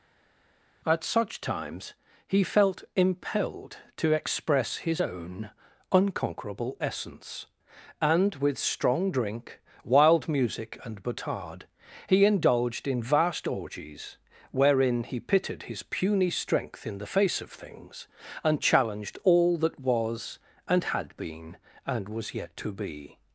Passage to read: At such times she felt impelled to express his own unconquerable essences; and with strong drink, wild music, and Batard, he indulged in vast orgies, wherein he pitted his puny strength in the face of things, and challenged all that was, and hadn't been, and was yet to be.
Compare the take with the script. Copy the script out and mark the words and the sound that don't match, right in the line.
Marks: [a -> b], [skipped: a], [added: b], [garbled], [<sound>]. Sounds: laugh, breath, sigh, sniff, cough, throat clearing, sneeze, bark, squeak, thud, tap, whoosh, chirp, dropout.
At such times [she -> he] felt impelled to express his own unconquerable [essences; -> essence] and with strong drink, wild music, and Batard, he indulged in vast orgies, wherein he pitted his puny strength in the face of things, and challenged all that was, and [hadn't -> had] been, and was yet to be.